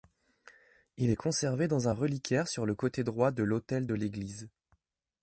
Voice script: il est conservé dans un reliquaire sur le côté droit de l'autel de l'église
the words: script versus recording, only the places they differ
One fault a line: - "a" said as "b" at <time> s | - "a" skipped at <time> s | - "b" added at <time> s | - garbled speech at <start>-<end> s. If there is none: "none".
none